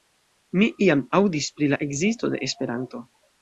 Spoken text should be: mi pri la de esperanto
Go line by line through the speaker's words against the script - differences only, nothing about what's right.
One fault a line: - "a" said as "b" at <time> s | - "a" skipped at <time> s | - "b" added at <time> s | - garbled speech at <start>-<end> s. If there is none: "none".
- "iam aŭdis" added at 0.8 s
- "ekzisto" added at 1.9 s